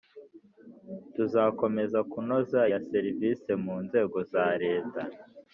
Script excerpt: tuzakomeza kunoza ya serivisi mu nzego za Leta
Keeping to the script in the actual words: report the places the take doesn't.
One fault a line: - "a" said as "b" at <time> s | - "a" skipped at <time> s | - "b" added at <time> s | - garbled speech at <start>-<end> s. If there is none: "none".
none